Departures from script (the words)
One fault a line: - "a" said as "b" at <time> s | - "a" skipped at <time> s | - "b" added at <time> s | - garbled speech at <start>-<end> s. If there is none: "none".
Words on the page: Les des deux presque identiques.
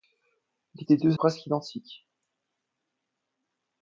none